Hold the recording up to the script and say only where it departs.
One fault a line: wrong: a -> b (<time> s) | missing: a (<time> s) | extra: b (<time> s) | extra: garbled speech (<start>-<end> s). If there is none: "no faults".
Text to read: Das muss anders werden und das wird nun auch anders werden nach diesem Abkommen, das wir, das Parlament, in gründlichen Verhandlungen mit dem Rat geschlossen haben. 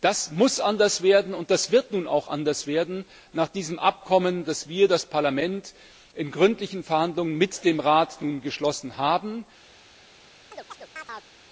no faults